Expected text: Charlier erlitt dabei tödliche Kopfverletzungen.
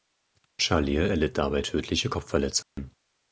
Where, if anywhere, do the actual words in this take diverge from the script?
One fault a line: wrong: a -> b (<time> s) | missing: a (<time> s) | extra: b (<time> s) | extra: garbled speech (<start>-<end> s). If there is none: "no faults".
no faults